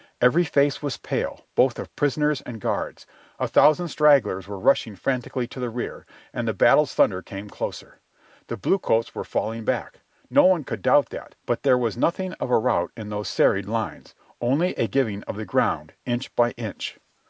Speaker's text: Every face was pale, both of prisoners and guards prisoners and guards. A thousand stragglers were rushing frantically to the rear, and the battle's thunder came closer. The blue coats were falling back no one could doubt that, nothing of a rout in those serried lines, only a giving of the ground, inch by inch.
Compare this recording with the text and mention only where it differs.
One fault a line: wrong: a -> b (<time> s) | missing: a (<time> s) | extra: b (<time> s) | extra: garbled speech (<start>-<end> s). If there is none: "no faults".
missing: prisoners and guards (3.0 s)
extra: but there was (11.4 s)